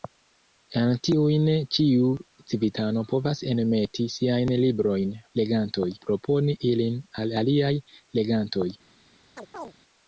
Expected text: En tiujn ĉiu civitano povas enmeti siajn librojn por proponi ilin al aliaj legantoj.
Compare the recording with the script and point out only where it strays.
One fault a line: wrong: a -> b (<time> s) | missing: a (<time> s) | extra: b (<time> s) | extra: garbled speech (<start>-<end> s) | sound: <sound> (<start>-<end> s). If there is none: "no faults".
wrong: por -> legantoj (5.4 s)
sound: chirp (9.4-9.7 s)